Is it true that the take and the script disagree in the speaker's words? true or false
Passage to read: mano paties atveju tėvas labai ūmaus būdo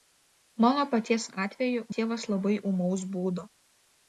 false